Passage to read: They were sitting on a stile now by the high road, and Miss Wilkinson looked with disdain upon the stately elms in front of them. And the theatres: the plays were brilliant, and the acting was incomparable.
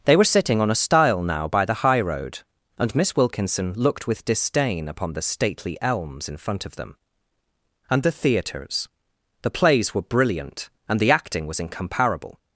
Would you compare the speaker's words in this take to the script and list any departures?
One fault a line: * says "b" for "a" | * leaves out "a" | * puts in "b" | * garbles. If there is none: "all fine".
all fine